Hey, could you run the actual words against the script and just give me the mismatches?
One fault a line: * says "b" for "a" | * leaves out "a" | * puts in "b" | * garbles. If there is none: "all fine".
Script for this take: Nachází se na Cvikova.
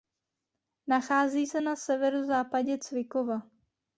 * puts in "severozápadě"